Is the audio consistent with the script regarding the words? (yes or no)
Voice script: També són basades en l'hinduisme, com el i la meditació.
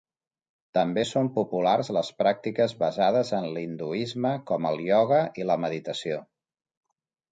no